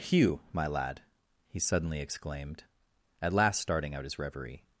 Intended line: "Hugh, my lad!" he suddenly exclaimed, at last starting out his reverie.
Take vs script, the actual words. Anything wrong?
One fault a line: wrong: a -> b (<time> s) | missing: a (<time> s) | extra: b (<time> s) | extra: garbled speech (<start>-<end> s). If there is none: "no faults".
no faults